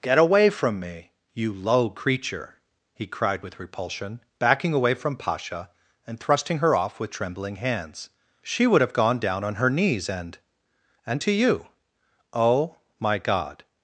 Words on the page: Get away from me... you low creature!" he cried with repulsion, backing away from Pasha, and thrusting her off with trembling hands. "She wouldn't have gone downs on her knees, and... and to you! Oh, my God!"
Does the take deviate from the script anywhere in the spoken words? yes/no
yes